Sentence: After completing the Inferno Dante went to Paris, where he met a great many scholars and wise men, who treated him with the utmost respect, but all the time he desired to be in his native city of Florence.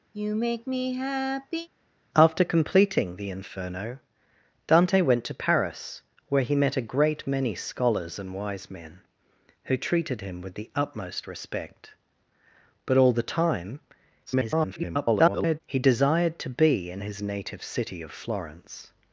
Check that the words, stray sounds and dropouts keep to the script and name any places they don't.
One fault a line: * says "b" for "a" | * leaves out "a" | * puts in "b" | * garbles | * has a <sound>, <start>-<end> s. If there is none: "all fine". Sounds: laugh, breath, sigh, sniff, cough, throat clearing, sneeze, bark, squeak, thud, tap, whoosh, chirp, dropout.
* has a sigh, 0.1-1.7 s
* garbles